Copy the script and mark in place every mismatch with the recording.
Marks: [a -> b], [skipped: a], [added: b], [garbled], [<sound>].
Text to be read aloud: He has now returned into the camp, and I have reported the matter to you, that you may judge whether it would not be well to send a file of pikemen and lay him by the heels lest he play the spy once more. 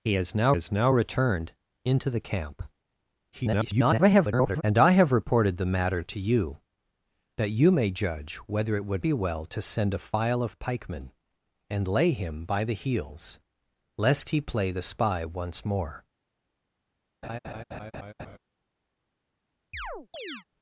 He has now [added: has now] returned into the camp, [garbled] and I have reported the matter to you, that you may judge whether it would [skipped: not] be well to send a file of pikemen and lay him by the heels lest he play the spy once more. [laugh] [chirp]